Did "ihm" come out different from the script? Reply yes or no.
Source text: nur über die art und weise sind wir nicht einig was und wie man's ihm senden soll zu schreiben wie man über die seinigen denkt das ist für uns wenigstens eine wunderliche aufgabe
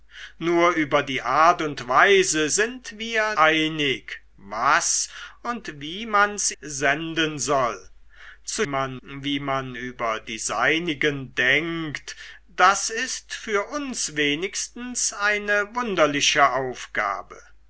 yes